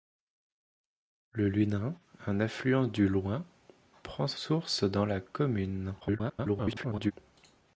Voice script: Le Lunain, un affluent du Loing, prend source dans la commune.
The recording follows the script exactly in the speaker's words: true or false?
false